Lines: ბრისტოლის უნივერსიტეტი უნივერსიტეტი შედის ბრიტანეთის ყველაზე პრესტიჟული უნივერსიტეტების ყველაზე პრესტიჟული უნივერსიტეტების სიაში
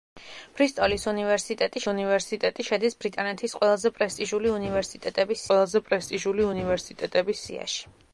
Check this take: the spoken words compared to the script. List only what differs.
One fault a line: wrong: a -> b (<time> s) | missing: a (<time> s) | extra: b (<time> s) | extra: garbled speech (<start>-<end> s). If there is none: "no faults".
no faults